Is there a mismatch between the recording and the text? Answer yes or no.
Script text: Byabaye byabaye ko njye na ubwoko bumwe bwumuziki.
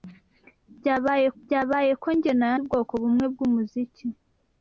no